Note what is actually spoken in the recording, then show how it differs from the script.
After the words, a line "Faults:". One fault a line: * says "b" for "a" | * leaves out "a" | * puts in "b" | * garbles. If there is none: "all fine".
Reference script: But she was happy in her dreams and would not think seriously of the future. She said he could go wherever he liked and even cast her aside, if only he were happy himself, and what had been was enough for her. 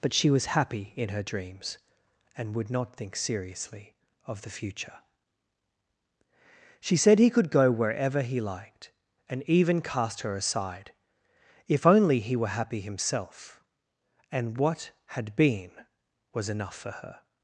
But she was happy in her dreams and would not think seriously of the future. She said he could go wherever he liked and even cast her aside, if only he were happy himself, and what had been was enough for her.
Faults:
all fine